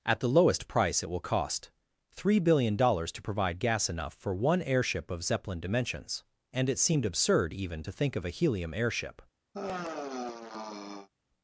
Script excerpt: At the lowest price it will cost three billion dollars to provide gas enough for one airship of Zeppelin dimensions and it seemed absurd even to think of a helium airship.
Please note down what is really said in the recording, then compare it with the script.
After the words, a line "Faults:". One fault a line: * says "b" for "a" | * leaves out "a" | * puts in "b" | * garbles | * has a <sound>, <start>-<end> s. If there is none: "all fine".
At the lowest price it will cost three billion dollars to provide gas enough for one airship of Zeppelin dimensions and it seemed absurd even to think of a helium airship.
Faults:
* has a sigh, 9.5-11.1 s